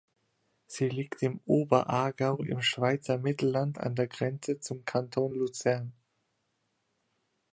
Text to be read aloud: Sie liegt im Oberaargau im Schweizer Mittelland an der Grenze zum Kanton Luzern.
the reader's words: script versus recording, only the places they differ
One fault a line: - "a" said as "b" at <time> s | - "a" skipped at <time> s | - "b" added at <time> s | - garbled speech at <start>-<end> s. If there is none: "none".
none